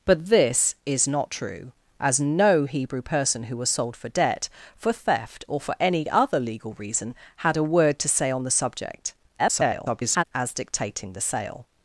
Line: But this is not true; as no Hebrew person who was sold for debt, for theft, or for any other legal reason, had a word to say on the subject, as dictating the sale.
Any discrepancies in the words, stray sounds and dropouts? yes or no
yes